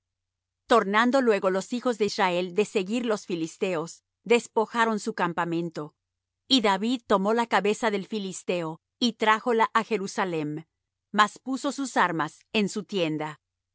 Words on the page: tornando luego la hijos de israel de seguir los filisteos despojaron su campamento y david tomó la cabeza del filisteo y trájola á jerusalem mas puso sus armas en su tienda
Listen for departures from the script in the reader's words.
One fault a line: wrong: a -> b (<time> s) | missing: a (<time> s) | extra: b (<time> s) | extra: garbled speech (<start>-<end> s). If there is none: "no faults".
wrong: la -> los (1.5 s)